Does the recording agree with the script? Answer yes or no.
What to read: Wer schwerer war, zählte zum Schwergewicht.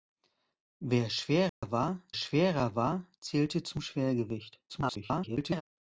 no